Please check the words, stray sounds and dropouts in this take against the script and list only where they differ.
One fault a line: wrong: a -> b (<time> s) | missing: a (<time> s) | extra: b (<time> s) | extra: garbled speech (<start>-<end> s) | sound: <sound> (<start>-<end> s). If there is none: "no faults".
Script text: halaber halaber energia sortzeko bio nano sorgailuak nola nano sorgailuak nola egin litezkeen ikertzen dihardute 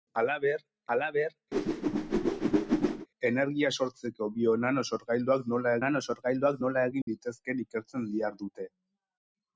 sound: whoosh (1.5-3.1 s)
sound: dropout (7.0-7.1 s)